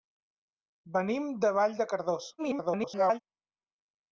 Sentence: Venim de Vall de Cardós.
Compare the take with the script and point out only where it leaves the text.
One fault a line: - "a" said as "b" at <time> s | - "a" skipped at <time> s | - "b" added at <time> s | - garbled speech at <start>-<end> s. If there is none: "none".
- garbled speech at 2.4-3.2 s